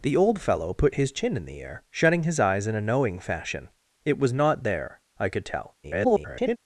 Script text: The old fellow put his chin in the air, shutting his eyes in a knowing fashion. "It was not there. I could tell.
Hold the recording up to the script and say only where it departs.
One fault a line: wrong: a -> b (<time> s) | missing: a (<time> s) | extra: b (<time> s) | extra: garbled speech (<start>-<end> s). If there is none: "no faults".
extra: garbled speech (5.8-6.6 s)